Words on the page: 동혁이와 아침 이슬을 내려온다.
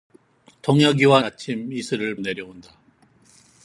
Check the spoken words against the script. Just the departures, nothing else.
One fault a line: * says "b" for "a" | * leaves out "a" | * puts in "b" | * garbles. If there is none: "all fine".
all fine